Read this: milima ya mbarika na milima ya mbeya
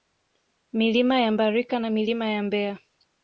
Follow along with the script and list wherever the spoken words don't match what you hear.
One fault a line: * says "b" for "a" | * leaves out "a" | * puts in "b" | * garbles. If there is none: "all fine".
all fine